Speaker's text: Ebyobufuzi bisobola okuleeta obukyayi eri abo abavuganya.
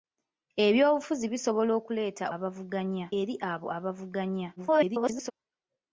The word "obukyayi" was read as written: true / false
false